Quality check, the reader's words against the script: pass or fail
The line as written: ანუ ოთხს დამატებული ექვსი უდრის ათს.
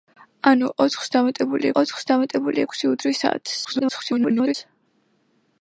fail